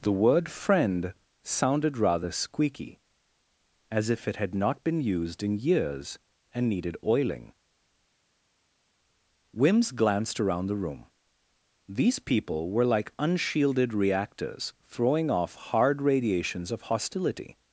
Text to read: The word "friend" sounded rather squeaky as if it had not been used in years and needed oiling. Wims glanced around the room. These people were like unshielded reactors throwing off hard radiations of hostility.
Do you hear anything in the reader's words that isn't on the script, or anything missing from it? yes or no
no